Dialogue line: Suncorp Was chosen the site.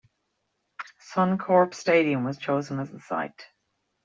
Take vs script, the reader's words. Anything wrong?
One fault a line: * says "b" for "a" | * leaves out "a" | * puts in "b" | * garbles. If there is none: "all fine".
* puts in "Stadium"
* puts in "as"